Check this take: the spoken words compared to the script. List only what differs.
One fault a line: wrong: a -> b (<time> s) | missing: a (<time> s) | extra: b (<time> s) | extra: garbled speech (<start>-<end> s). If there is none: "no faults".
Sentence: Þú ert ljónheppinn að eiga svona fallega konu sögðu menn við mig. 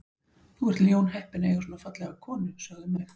missing: menn við (2.9 s)